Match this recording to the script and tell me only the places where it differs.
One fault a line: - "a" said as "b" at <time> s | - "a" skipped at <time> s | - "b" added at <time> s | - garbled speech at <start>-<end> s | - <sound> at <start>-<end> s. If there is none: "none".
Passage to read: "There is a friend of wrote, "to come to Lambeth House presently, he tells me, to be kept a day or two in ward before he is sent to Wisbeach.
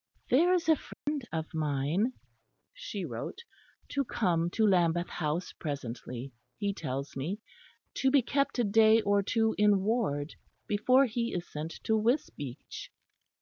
- dropout at 0.9-1.1 s
- "mine she" added at 1.5 s